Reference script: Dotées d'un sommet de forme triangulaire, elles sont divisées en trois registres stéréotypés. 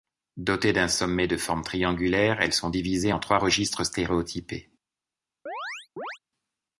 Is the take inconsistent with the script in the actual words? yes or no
no